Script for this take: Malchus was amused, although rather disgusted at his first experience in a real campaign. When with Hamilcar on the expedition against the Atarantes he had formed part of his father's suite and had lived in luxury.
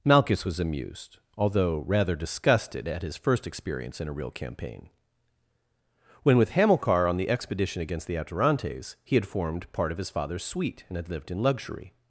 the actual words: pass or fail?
pass